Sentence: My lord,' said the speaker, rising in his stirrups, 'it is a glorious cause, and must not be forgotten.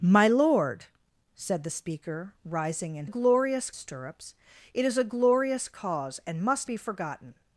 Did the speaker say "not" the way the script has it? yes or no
no